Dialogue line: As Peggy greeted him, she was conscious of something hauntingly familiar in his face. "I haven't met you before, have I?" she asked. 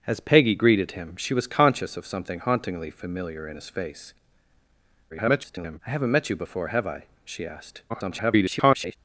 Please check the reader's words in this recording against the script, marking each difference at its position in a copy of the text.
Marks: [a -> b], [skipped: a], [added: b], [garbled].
As Peggy greeted him, she was conscious of something hauntingly familiar in his face. [garbled] "I haven't met you before, have I?" she asked. [garbled]